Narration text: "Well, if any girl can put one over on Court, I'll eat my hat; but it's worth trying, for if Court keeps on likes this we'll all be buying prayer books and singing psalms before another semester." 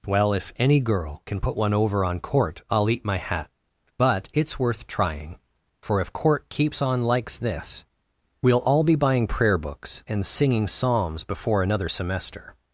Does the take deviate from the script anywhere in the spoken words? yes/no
no